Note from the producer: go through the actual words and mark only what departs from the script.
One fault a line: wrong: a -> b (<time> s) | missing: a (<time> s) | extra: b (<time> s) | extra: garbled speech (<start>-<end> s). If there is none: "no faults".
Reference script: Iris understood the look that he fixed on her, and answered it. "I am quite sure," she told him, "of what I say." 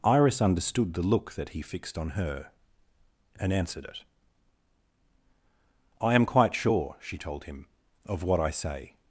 no faults